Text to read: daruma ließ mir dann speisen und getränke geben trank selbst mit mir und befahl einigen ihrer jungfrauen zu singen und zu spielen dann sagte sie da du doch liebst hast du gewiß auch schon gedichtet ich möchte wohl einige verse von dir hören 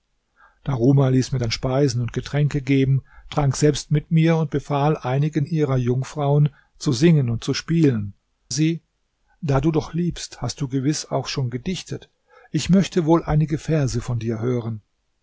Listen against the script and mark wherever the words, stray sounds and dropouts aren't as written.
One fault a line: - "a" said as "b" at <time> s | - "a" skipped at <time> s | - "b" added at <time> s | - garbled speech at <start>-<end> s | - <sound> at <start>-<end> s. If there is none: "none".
- "dann sagte" skipped at 8.1 s